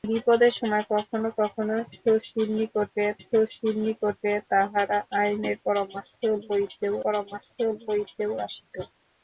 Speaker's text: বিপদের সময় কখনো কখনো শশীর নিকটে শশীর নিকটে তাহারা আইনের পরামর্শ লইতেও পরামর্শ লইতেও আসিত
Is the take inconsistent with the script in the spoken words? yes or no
no